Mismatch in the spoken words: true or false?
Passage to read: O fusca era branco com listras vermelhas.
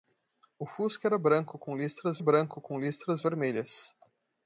true